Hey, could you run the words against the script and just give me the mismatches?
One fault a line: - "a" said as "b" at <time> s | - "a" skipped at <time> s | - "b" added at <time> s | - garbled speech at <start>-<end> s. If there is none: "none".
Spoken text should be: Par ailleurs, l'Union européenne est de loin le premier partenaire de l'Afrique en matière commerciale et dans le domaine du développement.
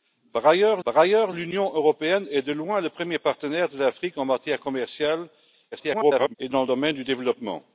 - "par ailleurs" added at 0.8 s
- garbled speech at 5.7-6.3 s